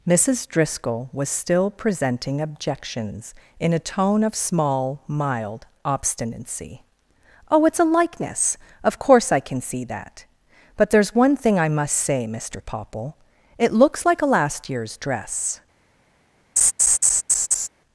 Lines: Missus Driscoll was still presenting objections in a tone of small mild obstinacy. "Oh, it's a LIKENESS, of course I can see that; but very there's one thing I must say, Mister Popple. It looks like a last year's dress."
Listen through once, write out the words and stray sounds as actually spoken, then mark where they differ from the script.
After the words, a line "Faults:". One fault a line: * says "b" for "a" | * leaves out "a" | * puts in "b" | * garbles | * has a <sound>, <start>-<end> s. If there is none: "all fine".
Missus Driscoll was still presenting objections in a tone of small mild obstinacy. "Oh, it's a LIKENESS, of course I can see that; but there's one thing I must say, Mister Popple. It looks like a last year's dress."
Faults:
* leaves out "very"
* has a laugh, 16.6-17.7 s